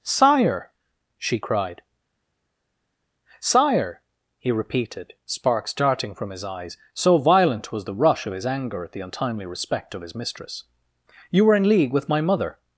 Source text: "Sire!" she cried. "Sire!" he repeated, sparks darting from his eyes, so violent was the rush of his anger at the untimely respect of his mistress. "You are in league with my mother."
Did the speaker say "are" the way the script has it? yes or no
no